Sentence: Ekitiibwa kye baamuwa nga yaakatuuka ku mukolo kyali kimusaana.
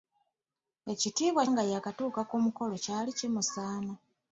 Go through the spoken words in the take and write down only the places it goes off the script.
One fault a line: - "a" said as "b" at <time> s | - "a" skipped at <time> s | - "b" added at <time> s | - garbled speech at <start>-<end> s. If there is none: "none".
- "kye baamuwa" skipped at 1.4 s